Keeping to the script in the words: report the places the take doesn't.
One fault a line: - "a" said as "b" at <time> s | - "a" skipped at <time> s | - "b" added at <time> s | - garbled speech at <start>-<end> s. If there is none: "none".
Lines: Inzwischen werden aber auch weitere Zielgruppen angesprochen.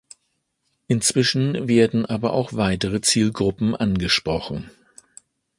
none